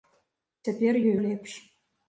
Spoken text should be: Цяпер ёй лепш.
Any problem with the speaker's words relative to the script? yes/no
no